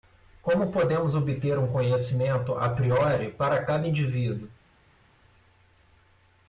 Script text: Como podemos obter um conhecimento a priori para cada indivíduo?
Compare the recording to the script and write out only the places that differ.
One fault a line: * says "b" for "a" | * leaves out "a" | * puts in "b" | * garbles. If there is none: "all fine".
all fine